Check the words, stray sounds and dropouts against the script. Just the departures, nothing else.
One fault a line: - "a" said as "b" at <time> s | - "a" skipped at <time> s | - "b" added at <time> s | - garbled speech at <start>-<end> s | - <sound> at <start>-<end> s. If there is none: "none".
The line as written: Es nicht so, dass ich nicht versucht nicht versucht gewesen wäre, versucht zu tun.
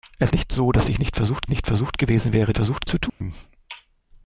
- dropout at 3.1-3.2 s